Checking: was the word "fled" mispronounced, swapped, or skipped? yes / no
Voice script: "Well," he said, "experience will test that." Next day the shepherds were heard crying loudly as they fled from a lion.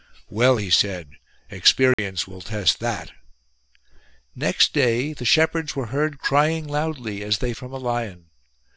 yes